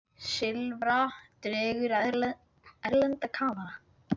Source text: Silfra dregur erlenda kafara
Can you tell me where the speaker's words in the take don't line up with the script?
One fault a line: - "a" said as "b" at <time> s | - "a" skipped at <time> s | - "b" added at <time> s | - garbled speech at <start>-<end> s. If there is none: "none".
none